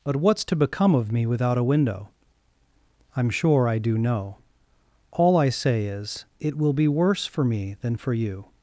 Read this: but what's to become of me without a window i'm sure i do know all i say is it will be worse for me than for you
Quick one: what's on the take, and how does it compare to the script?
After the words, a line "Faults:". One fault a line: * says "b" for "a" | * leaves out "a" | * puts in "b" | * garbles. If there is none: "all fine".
but what's to become of me without a window i'm sure i do know all i say is it will be worse for me than for you
Faults:
all fine